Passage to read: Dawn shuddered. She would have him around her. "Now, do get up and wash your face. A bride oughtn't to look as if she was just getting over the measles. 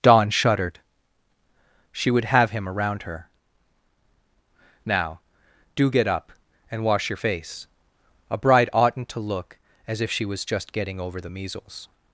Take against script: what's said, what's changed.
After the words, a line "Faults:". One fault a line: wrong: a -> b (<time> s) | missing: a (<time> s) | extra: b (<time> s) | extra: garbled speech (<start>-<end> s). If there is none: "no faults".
Dawn shuddered. She would have him around her. "Now, do get up and wash your face. A bride oughtn't to look as if she was just getting over the measles.
Faults:
no faults